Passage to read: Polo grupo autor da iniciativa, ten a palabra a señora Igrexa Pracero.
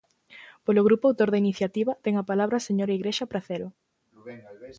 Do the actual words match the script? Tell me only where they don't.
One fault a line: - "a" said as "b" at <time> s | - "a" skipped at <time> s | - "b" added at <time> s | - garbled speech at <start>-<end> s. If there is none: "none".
none